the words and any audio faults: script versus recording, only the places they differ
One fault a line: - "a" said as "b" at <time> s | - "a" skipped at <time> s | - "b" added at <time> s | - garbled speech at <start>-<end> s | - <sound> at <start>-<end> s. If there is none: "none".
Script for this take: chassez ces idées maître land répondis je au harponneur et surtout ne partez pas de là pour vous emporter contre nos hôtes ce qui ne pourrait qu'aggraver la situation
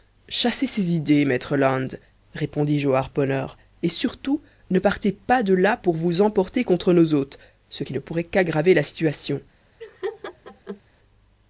- laugh at 9.8-10.8 s